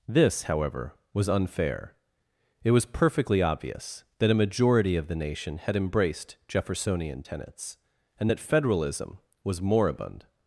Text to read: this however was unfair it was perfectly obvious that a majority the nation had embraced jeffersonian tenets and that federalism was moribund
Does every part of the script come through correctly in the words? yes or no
no